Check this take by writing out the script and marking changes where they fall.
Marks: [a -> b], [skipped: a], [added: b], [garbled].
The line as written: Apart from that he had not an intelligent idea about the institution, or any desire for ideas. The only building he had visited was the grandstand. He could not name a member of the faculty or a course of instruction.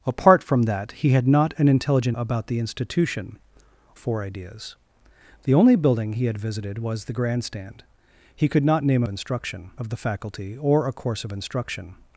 Apart from that he had not an intelligent [skipped: idea] about the institution, [skipped: or any desire] for ideas. The only building he had visited was the grandstand. He could not name a [member -> instruction] of the faculty or a course of instruction.